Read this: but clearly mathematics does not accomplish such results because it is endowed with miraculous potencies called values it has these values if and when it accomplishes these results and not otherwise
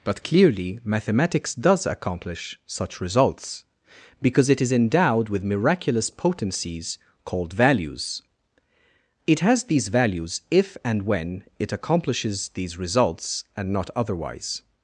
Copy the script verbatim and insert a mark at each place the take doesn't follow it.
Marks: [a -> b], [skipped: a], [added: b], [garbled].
but clearly mathematics does [skipped: not] accomplish such results because it is endowed with miraculous potencies called values it has these values if and when it accomplishes these results and not otherwise